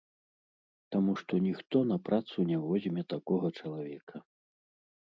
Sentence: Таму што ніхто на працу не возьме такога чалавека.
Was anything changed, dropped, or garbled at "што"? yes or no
no